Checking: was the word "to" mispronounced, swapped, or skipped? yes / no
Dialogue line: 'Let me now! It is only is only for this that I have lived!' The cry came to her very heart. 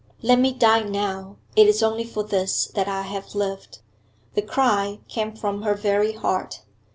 yes